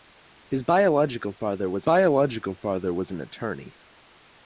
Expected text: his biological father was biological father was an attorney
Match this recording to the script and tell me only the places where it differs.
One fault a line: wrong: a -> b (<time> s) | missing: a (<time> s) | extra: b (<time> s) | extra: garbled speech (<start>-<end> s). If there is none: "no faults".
no faults